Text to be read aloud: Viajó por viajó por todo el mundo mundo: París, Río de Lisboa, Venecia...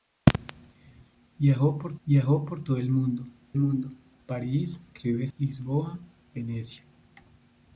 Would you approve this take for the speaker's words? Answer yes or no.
yes